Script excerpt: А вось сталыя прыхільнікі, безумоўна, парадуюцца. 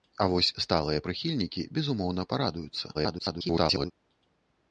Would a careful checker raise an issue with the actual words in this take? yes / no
yes